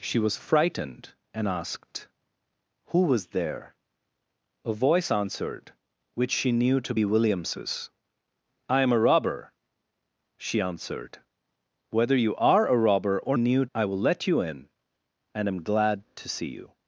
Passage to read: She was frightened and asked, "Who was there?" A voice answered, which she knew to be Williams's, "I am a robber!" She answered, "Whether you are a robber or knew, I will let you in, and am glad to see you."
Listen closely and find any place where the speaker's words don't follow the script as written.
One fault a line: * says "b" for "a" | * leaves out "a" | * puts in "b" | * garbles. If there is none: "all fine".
all fine